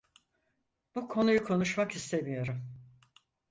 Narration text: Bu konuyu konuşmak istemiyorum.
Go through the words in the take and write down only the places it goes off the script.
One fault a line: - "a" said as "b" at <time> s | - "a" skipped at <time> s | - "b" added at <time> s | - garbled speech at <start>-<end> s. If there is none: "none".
none